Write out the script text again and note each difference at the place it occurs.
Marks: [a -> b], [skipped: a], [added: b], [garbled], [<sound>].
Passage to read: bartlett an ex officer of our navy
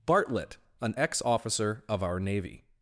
bartlett an ex officer of our navy